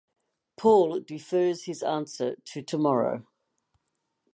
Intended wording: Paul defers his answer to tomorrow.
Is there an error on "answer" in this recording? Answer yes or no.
no